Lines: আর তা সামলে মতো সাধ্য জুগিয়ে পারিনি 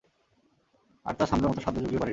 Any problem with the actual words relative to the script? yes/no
no